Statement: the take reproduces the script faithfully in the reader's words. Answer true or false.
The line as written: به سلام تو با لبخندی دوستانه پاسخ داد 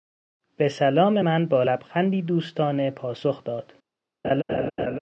false